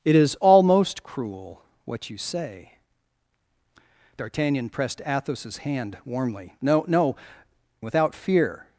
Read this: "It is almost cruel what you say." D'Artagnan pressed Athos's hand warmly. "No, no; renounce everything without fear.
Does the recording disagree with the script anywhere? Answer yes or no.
yes